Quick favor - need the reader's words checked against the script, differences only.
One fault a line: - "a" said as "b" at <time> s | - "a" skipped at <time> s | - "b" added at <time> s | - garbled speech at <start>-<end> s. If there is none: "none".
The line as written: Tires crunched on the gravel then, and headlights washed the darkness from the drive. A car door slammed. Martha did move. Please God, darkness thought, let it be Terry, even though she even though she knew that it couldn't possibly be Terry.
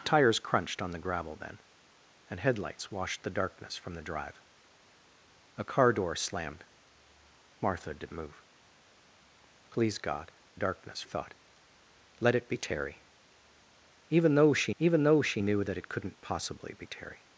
none